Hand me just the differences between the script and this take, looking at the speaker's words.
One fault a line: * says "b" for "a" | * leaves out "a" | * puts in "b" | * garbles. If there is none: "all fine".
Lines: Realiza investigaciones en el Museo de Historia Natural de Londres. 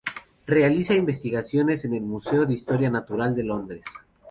all fine